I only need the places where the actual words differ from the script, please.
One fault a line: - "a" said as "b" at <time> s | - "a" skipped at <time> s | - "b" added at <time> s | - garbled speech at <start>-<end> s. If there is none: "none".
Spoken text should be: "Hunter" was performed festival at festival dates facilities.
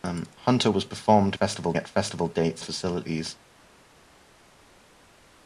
none